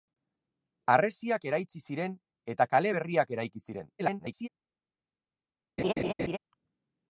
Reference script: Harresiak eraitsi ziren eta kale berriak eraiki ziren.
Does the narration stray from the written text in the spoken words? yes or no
yes